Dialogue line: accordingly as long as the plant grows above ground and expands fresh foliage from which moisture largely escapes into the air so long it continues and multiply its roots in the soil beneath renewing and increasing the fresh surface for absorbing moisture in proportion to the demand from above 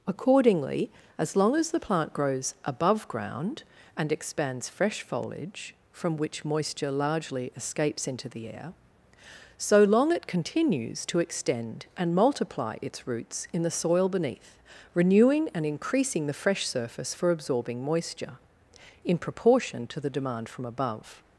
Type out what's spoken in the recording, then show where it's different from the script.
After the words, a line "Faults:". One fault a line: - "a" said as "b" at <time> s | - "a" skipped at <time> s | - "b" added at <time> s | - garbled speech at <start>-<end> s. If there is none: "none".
accordingly as long as the plant grows above ground and expands fresh foliage from which moisture largely escapes into the air so long it continues to extend and multiply its roots in the soil beneath renewing and increasing the fresh surface for absorbing moisture in proportion to the demand from above
Faults:
- "to extend" added at 11.1 s